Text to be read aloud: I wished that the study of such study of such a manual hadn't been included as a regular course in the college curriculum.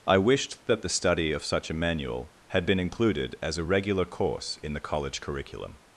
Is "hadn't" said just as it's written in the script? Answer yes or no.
no